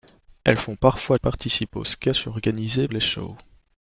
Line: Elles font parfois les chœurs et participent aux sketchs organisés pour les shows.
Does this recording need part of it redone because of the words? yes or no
yes